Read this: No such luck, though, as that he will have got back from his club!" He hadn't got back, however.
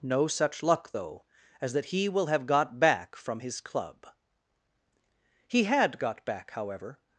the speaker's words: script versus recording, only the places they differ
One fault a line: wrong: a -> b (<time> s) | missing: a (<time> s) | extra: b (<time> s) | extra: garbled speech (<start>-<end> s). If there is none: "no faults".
wrong: hadn't -> had (5.6 s)